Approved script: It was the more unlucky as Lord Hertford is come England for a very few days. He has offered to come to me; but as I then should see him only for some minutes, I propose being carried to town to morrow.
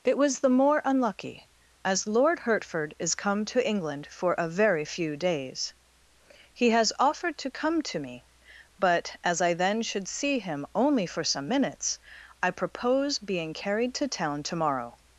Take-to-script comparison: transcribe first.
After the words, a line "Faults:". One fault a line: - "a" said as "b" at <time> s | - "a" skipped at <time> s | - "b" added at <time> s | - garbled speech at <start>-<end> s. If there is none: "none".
It was the more unlucky as Lord Hertford is come to England for a very few days. He has offered to come to me; but as I then should see him only for some minutes, I propose being carried to town to morrow.
Faults:
- "to" added at 3.5 s